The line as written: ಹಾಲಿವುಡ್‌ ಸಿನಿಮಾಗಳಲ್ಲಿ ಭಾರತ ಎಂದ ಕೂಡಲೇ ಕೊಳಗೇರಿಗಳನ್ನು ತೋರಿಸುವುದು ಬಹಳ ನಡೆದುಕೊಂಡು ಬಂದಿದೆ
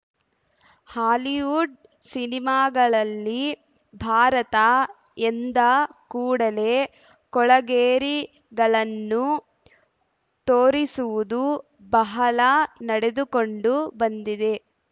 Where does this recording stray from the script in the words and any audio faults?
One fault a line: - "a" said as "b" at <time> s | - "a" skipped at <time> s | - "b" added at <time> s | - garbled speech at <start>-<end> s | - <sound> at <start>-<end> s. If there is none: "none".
none